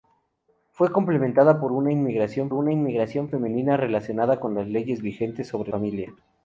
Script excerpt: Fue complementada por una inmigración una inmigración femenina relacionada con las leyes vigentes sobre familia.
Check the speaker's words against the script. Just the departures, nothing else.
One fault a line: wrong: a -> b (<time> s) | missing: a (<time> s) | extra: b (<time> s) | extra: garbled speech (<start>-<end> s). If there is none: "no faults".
no faults